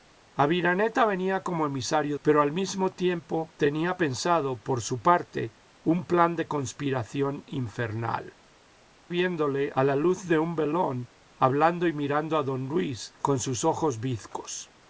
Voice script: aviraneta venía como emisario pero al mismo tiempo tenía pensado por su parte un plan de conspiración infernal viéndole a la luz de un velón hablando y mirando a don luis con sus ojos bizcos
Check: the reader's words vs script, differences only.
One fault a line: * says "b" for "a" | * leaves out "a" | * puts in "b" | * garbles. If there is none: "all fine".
all fine